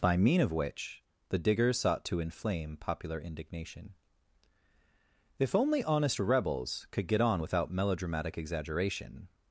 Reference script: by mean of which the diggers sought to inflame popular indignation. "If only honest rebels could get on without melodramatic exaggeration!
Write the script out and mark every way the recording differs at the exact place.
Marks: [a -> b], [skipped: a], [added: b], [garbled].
by mean of which the diggers sought to inflame popular indignation. "If only honest rebels could get on without melodramatic exaggeration!